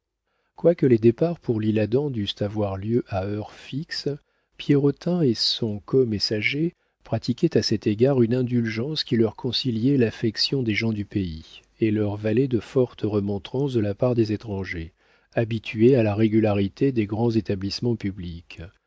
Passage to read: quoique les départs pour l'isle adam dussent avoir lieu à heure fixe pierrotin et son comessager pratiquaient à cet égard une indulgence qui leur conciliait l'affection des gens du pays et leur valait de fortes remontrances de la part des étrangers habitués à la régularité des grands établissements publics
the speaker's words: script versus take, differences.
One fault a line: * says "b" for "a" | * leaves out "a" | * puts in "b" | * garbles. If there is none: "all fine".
all fine